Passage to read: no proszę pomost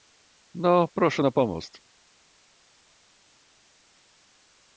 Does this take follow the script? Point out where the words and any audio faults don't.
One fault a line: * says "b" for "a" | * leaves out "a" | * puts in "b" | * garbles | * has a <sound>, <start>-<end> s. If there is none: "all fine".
* puts in "na"